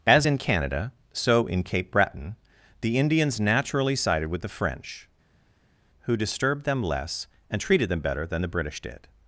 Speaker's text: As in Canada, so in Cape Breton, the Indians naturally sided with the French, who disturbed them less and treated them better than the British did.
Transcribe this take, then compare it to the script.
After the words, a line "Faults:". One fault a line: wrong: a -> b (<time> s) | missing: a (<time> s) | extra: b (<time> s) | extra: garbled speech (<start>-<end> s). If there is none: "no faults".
As in Canada, so in Cape Breton, the Indians naturally sided with the French, who disturbed them less and treated them better than the British did.
Faults:
no faults